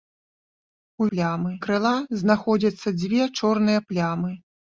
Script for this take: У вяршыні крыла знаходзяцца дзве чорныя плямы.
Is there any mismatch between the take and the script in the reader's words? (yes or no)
yes